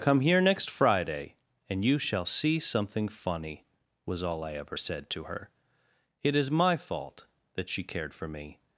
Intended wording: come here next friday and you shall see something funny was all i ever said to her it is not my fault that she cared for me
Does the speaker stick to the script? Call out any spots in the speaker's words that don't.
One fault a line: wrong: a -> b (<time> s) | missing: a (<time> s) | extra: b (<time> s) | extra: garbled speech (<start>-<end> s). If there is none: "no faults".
missing: not (6.5 s)